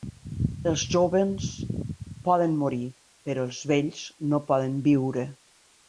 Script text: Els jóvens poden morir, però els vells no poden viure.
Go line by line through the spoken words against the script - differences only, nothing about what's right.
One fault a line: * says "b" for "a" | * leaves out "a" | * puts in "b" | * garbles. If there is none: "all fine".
all fine